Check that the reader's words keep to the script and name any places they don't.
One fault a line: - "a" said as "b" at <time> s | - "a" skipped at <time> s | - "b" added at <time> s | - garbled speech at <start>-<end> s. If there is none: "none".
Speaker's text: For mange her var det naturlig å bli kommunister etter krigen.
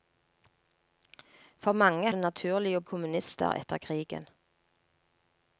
- "her var" skipped at 2.1 s
- "bli" skipped at 2.8 s